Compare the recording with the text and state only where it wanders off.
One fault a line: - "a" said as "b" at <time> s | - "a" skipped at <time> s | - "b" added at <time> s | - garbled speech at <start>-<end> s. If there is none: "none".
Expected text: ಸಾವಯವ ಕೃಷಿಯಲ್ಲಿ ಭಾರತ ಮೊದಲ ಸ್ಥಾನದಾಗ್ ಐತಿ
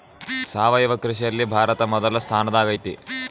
none